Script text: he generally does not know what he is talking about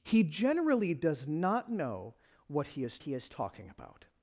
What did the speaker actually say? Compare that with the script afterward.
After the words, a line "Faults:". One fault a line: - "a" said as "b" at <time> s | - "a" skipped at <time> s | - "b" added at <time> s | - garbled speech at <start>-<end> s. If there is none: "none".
he generally does not know what he is he is talking about
Faults:
- "he is" added at 3.0 s